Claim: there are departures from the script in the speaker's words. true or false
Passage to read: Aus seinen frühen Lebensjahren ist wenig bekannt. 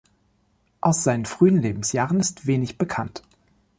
false